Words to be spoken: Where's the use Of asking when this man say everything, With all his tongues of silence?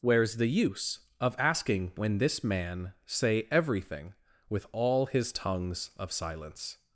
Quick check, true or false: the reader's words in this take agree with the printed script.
true